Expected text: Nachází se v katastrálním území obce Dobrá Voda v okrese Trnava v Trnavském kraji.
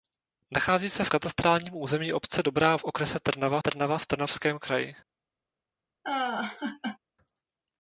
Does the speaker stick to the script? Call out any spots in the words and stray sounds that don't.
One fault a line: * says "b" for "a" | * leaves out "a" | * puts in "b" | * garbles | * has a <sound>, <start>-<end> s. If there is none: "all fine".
* leaves out "Voda"
* puts in "Trnava"
* has a laugh, 6.0-7.0 s